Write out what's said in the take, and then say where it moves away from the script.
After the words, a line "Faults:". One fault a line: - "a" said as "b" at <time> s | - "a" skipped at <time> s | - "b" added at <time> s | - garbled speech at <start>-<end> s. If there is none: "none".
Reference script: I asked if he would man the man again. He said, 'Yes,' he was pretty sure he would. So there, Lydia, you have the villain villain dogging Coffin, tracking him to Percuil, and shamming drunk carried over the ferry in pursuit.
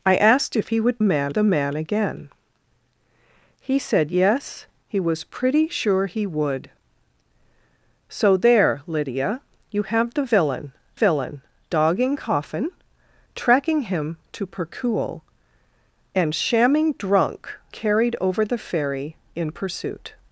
I asked if he would man the man again. He said, 'Yes,' he was pretty sure he would. So there, Lydia, you have the villain villain dogging Coffin, tracking him to Percuil, and shamming drunk carried over the ferry in pursuit.
Faults:
none